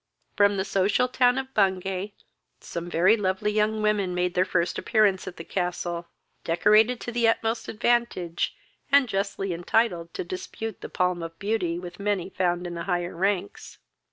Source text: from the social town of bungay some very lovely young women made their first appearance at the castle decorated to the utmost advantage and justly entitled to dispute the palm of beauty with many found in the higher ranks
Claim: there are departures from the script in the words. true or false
false